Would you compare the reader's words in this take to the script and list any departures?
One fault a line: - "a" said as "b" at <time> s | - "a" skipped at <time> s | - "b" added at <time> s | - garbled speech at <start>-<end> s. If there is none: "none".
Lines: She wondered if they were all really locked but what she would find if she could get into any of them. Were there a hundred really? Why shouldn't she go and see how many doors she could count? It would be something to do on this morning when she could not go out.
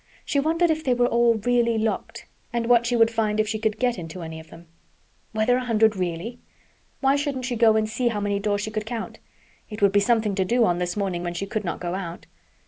- "but" said as "and" at 2.5 s